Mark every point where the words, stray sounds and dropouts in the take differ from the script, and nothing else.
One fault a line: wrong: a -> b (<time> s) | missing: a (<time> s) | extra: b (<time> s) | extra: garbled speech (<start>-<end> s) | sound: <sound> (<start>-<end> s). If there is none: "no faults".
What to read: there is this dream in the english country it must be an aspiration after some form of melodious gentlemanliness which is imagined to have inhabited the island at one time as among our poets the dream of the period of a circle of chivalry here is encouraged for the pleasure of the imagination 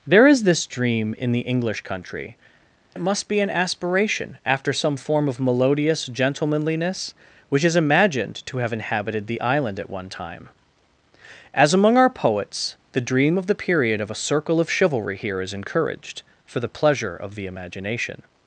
no faults